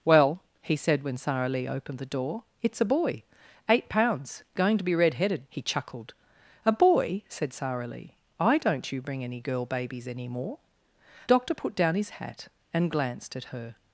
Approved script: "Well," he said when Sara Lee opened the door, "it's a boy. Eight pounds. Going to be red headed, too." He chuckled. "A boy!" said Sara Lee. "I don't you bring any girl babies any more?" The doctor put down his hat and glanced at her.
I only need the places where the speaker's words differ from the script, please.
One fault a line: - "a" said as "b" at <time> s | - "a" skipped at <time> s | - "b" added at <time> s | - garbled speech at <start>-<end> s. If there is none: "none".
- "too" skipped at 5.5 s
- "The" skipped at 10.6 s